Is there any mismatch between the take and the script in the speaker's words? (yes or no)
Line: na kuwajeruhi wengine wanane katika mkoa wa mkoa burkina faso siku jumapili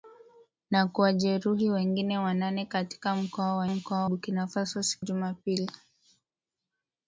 no